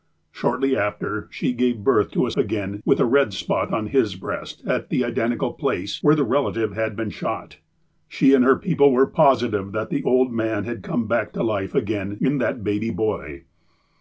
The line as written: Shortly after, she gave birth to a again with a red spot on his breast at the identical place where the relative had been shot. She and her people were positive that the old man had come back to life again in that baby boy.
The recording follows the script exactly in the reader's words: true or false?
true